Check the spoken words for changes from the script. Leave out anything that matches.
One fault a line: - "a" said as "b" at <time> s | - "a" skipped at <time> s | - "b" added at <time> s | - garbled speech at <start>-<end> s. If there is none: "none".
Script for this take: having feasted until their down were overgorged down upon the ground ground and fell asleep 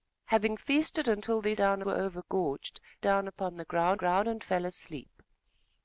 none